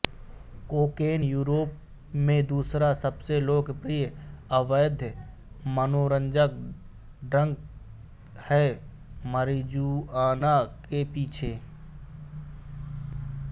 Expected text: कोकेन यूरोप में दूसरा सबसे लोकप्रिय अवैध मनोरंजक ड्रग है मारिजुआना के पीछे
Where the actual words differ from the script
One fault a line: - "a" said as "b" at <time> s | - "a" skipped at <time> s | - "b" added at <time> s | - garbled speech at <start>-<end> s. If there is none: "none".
none